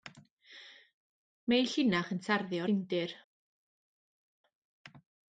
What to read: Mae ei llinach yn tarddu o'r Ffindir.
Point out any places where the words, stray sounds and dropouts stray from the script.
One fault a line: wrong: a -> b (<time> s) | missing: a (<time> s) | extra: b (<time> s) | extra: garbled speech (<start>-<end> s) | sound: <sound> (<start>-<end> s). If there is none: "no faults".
missing: o'r (2.6 s)